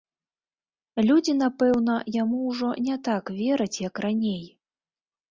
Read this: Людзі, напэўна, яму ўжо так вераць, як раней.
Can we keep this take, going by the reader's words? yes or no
no